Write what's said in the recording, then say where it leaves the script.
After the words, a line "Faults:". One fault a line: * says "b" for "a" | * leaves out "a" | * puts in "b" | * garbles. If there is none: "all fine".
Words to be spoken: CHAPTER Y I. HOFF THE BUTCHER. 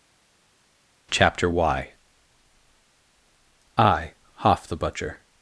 CHAPTER Y I. HOFF THE BUTCHER.
Faults:
all fine